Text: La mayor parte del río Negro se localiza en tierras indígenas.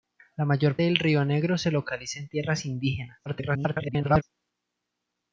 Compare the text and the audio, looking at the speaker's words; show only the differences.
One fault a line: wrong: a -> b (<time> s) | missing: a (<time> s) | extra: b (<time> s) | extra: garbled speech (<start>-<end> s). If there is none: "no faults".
missing: parte (0.8 s)
extra: garbled speech (3.3-4.2 s)